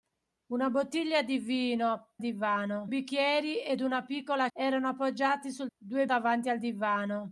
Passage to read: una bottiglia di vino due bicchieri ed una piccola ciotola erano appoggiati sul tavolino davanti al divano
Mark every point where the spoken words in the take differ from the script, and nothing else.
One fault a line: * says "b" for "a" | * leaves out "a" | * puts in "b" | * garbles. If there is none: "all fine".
* says "divano" for "due"
* leaves out "ciotola"
* says "due" for "tavolino"